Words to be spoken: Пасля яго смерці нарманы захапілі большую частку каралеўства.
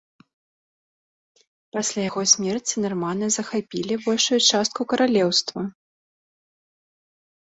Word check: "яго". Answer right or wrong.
right